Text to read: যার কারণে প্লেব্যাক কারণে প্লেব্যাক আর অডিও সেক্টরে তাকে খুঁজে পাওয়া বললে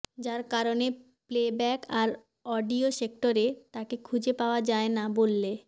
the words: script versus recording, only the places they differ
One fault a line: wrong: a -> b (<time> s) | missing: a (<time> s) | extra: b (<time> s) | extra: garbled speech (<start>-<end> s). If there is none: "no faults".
missing: কারণে প্লেব্যাক (1.8 s)
extra: যায় না (4.6 s)